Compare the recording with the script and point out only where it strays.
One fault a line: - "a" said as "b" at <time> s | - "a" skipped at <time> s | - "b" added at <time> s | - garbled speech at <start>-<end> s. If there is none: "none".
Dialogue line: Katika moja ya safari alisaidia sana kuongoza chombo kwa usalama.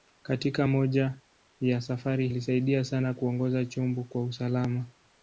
none